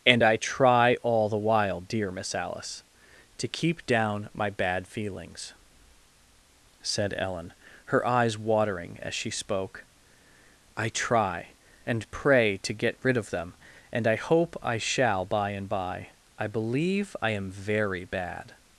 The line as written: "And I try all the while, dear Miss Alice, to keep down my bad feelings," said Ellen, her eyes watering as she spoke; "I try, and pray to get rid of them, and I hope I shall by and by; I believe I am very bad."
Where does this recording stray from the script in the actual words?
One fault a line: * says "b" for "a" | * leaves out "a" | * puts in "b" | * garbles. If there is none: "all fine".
all fine